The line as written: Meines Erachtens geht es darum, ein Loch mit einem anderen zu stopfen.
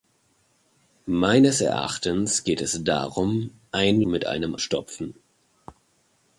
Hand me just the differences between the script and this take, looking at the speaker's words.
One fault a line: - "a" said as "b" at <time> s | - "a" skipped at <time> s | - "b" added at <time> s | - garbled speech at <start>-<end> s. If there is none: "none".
- "Loch" skipped at 4.0 s
- "anderen zu" skipped at 4.6 s